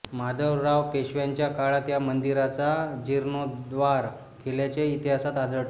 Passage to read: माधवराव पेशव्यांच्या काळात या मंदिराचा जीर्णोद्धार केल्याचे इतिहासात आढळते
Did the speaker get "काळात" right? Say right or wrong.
right